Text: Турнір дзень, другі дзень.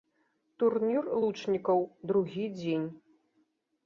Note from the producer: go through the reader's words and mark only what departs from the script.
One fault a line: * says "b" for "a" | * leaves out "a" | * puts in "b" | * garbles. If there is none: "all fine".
* says "лучнікаў" for "дзень"